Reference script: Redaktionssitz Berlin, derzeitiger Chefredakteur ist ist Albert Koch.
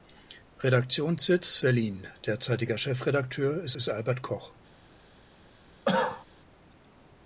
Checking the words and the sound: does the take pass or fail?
fail